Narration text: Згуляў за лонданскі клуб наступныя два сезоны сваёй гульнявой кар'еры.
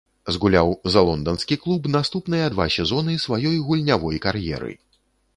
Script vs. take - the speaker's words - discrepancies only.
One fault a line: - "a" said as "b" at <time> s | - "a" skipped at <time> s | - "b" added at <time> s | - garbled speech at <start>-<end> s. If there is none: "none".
none